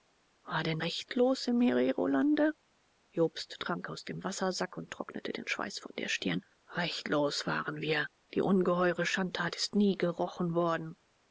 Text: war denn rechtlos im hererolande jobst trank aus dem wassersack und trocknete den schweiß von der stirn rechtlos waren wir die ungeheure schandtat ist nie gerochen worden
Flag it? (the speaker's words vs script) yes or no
no